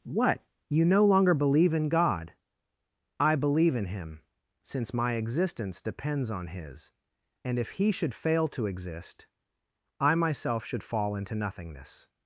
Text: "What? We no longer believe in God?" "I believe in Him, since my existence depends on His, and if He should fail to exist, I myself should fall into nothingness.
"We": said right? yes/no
no